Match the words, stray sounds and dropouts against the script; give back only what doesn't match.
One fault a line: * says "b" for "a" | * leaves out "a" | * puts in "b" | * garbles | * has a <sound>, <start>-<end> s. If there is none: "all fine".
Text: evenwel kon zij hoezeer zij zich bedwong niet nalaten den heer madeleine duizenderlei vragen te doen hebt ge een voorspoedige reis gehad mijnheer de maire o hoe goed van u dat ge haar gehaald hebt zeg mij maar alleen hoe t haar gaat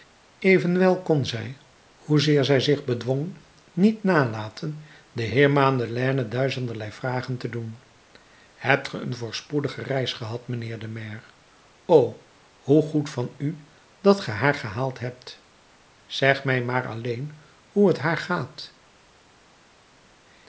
all fine